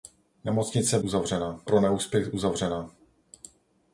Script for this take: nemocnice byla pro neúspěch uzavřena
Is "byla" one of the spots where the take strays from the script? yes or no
yes